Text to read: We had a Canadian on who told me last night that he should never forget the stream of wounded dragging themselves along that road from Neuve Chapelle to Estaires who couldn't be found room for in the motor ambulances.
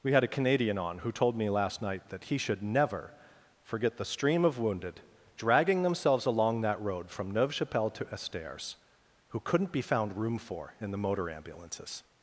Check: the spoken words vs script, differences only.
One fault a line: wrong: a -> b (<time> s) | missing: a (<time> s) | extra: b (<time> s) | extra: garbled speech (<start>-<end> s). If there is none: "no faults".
no faults